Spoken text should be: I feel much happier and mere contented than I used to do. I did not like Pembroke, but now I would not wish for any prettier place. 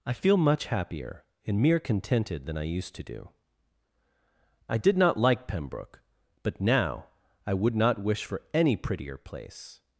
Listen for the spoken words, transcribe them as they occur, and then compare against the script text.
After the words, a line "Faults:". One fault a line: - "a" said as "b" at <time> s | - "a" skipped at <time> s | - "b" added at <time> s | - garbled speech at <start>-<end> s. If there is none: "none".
I feel much happier and mere contented than I used to do. I did not like Pembroke, but now I would not wish for any prettier place.
Faults:
none